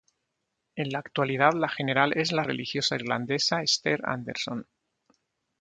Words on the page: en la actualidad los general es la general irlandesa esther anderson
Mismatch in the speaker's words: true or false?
true